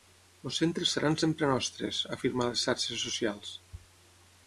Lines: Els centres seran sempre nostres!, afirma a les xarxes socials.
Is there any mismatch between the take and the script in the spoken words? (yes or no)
no